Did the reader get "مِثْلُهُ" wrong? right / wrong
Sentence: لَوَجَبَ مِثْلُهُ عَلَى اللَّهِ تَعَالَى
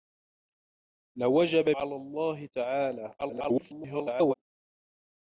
wrong